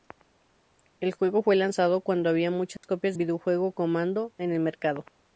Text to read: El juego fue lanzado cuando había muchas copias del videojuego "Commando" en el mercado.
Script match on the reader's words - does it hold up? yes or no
no